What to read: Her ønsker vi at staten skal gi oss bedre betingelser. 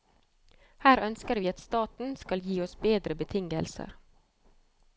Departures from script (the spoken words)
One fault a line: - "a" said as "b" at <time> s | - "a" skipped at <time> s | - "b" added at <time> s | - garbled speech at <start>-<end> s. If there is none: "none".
none